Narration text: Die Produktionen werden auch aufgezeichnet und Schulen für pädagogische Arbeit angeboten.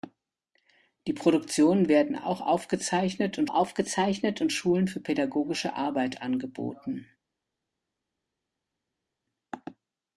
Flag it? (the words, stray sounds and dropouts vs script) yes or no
yes